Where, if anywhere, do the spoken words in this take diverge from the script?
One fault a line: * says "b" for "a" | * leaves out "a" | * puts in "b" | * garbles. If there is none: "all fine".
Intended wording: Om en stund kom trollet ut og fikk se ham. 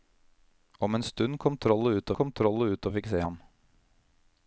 * puts in "kom trollet ut"